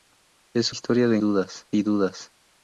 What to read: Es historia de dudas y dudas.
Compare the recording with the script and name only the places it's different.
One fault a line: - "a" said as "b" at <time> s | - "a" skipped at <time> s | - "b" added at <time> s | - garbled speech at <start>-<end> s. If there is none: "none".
none